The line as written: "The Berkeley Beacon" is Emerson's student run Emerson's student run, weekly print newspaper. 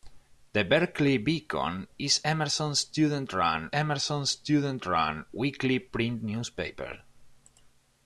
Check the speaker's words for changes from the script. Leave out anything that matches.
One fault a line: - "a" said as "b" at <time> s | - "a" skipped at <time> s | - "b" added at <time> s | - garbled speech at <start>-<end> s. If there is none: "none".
none